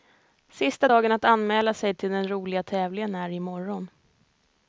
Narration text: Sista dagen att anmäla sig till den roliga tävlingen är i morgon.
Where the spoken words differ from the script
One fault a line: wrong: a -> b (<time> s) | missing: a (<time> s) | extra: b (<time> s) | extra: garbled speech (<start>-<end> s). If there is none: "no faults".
no faults